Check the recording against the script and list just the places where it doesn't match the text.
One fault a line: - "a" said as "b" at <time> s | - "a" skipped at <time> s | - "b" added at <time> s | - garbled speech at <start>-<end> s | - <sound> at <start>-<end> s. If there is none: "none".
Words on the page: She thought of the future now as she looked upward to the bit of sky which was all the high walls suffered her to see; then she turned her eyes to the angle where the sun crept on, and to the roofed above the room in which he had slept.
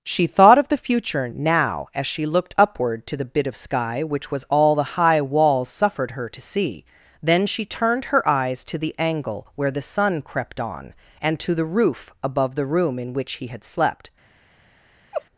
- "roofed" said as "roof" at 11.6 s
- laugh at 15.1-15.2 s